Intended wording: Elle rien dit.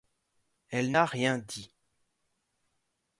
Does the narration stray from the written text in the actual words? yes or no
yes